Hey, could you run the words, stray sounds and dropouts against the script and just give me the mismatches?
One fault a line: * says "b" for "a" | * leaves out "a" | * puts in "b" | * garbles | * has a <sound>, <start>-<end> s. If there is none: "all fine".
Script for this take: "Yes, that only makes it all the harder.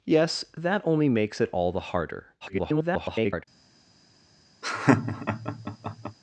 * garbles
* has a laugh, 4.6-6.2 s